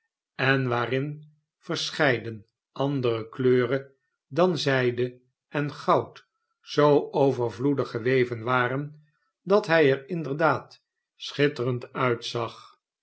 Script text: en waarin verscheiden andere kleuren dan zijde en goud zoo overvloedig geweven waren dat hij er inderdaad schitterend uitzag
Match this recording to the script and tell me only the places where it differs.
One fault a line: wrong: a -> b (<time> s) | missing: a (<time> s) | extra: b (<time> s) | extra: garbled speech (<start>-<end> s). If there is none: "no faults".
no faults